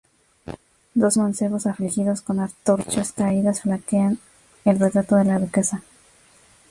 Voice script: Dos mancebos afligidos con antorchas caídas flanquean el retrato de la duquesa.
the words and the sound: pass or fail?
pass